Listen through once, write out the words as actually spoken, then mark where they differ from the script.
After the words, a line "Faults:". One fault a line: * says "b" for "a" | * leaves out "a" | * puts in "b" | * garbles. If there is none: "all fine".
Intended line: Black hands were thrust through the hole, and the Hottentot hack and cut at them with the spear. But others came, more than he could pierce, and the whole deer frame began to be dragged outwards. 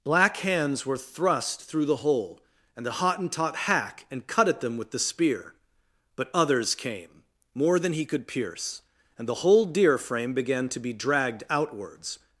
Black hands were thrust through the hole, and the Hottentot hack and cut at them with the spear. But others came, more than he could pierce, and the whole deer frame began to be dragged outwards.
Faults:
all fine